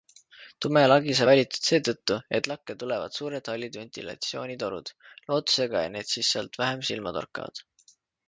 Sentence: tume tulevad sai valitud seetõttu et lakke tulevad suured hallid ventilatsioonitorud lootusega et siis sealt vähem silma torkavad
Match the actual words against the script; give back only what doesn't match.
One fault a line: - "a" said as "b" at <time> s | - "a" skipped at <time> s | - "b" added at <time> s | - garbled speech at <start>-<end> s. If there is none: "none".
- "tulevad" said as "lagi" at 0.9 s
- "need" added at 6.0 s